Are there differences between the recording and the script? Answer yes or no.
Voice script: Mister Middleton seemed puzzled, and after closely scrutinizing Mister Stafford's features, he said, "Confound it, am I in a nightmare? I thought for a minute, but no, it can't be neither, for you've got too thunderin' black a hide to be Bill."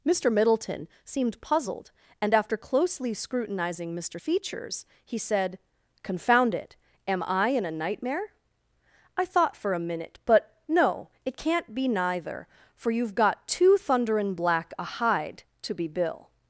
yes